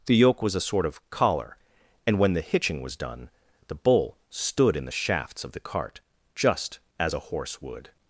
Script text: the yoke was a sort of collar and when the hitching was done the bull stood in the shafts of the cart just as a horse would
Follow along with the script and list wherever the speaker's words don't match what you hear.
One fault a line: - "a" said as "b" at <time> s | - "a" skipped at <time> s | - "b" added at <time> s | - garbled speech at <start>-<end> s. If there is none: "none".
none